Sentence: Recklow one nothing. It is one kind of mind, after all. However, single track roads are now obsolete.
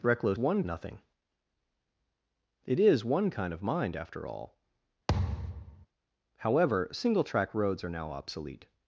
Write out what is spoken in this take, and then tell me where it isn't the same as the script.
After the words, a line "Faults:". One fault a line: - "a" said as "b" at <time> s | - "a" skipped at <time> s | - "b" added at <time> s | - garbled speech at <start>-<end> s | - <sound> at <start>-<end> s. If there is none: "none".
Recklow one nothing. It is one kind of mind, after all. However, single track roads are now obsolete.
Faults:
- thud at 5.1-5.9 s